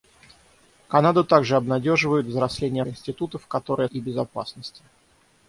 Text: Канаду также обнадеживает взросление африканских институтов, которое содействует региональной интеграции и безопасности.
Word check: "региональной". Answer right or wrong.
wrong